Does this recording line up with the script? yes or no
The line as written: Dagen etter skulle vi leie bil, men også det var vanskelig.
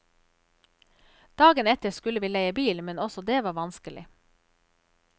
yes